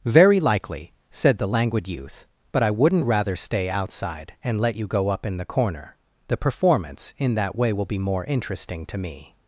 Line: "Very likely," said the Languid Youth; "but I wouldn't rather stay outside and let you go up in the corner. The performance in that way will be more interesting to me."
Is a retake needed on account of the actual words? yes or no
no